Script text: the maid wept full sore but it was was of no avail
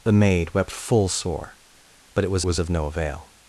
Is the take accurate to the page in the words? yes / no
yes